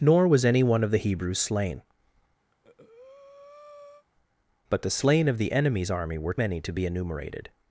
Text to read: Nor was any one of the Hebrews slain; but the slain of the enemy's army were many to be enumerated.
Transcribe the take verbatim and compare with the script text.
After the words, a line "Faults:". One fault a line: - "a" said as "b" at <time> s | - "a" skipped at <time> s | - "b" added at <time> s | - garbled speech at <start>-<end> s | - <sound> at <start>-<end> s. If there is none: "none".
Nor was any one of the Hebrews slain; but the slain of the enemy's army were many to be enumerated.
Faults:
- breath at 2.5-4.1 s